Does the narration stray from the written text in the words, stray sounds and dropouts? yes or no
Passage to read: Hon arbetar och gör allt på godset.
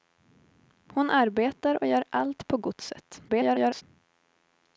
yes